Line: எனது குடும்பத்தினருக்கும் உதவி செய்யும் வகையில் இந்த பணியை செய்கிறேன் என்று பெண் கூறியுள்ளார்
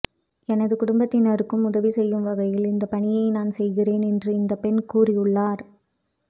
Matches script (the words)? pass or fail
fail